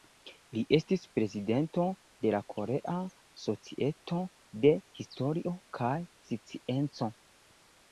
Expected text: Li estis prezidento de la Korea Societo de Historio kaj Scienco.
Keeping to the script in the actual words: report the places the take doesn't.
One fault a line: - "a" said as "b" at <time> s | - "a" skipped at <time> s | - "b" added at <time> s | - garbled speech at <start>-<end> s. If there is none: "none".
none